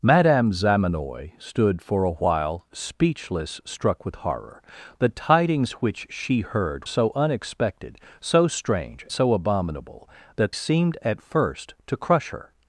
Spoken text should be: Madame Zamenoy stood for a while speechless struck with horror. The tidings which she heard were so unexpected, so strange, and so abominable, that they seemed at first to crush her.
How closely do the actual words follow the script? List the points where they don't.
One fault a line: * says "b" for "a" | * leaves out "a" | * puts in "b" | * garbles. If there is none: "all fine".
* leaves out "were"
* leaves out "and"
* leaves out "they"